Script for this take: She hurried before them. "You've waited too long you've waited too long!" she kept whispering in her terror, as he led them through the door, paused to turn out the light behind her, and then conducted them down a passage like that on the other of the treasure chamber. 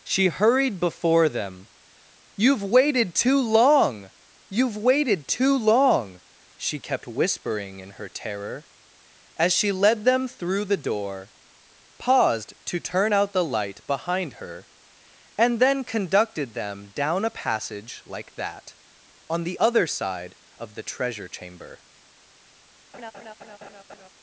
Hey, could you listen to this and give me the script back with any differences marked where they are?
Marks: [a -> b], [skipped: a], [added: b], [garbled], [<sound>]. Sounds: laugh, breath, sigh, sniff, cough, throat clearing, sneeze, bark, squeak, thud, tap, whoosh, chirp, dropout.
She hurried before them. "You've waited too long you've waited too long!" she kept whispering in her terror, as [he -> she] led them through the door, paused to turn out the light behind her, and then conducted them down a passage like that on the other [added: side] of the treasure chamber. [laugh]